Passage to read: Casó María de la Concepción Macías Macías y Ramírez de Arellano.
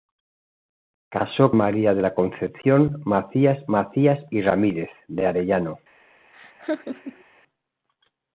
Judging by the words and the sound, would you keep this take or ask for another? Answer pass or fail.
fail